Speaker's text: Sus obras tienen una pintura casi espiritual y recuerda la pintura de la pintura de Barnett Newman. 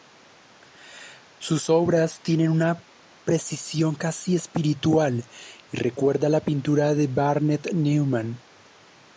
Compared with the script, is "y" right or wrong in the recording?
right